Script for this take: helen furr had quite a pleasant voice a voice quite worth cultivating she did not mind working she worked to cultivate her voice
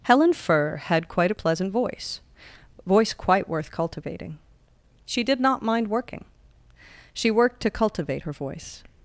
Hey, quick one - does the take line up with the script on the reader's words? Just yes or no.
no